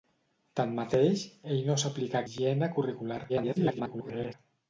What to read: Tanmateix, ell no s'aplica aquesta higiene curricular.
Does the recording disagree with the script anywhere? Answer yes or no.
yes